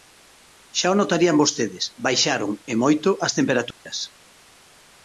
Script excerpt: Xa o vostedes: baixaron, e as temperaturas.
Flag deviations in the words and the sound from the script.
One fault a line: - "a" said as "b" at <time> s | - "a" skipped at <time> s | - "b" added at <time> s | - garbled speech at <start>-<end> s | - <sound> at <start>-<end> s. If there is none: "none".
- "notarían" added at 1.0 s
- "moito" added at 2.8 s
- dropout at 3.7-3.9 s